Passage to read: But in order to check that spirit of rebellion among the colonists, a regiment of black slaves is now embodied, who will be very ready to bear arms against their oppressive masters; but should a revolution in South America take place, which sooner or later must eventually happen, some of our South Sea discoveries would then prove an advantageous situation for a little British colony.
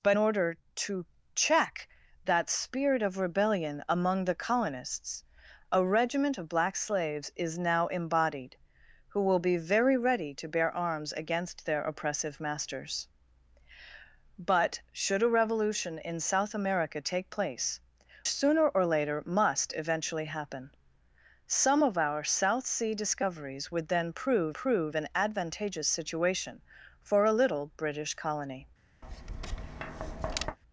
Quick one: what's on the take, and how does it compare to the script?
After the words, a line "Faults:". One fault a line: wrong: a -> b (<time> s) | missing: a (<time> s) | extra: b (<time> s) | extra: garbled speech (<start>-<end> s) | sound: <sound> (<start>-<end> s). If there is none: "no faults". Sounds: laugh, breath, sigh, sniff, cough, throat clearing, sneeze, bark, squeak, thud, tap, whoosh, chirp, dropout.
But order to check that spirit of rebellion among the colonists, a regiment of black slaves is now embodied, who will be very ready to bear arms against their oppressive masters; but should a revolution in South America take place, sooner or later must eventually happen, some of our South Sea discoveries would then prove prove an advantageous situation for a little British colony.
Faults:
missing: in (0.2 s)
missing: which (17.8 s)
extra: prove (24.5 s)
sound: tap (29.0-30.6 s)